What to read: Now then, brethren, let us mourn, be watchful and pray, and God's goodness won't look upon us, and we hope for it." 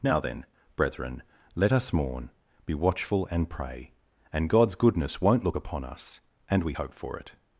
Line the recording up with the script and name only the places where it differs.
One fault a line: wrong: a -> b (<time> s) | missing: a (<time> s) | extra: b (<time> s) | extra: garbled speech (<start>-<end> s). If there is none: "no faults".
no faults